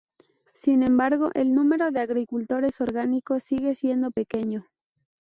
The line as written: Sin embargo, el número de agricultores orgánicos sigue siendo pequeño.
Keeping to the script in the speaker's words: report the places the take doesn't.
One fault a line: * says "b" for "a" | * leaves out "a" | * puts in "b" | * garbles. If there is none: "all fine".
all fine